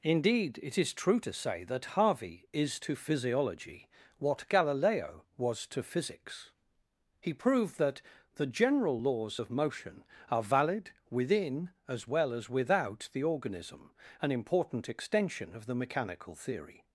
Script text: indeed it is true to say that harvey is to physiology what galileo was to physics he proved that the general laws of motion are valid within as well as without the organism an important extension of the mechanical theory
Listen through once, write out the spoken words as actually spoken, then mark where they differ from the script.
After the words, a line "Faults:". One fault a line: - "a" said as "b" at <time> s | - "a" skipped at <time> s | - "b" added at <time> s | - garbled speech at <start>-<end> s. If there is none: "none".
indeed it is true to say that harvey is to physiology what galileo was to physics he proved that the general laws of motion are valid within as well as without the organism an important extension of the mechanical theory
Faults:
none